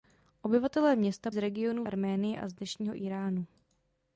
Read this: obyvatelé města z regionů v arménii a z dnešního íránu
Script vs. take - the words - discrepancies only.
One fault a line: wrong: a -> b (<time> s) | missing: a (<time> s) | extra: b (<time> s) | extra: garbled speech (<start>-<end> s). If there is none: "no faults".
no faults